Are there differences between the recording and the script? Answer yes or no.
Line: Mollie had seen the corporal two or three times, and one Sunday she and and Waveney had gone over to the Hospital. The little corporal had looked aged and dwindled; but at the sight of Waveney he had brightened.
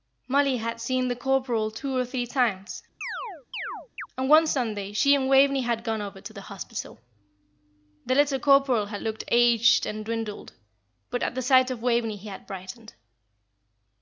yes